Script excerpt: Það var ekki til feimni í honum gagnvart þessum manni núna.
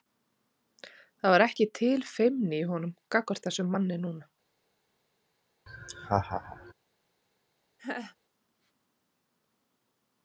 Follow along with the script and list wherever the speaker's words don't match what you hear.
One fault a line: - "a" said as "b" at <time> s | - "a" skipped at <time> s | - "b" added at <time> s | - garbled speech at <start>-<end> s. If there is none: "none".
none